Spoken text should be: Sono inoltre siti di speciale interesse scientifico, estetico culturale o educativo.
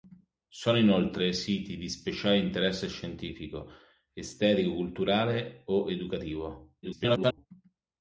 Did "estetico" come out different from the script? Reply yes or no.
no